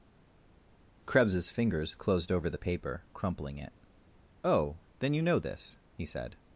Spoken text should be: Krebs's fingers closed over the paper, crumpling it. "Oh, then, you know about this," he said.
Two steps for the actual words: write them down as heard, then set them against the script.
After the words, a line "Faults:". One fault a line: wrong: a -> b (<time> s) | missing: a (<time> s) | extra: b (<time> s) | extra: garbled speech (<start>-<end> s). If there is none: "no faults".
Krebs's fingers closed over the paper, crumpling it. "Oh, then, you know this," he said.
Faults:
missing: about (5.4 s)